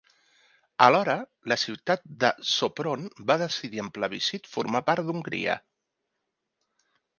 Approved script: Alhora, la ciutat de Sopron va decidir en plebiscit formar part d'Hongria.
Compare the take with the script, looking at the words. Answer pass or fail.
pass